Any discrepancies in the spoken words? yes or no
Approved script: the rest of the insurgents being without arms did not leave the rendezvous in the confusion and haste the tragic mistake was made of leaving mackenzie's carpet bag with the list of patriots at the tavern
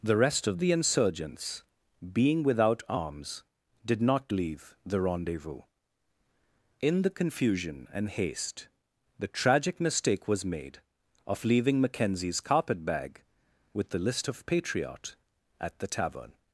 yes